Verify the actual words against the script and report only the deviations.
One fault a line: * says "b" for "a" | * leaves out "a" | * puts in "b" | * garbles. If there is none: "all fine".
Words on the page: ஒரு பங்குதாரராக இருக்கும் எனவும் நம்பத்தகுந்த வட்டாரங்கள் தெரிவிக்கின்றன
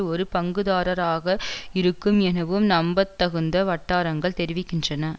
all fine